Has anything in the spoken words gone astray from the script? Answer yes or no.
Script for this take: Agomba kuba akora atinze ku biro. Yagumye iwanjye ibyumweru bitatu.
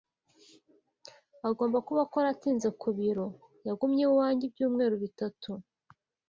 no